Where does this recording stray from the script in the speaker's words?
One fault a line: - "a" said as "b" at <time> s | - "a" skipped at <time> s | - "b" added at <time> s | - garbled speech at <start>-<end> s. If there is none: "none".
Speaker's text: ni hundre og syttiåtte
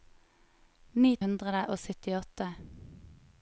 none